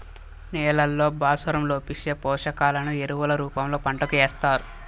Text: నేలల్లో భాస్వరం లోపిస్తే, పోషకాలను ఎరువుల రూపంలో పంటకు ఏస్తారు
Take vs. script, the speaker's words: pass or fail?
pass